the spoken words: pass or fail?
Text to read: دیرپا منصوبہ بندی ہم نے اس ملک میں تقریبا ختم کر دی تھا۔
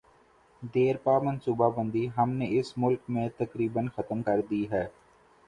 fail